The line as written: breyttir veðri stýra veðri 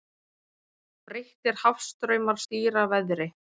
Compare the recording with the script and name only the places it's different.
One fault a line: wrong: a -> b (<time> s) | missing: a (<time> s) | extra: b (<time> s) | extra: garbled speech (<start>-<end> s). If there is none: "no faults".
wrong: veðri -> hafstraumar (1.6 s)